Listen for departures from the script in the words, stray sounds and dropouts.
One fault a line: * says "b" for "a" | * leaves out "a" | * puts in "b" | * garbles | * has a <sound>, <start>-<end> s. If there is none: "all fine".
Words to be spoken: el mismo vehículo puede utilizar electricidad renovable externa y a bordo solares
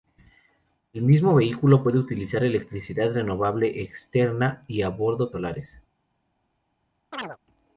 * has a chirp, 7.1-7.4 s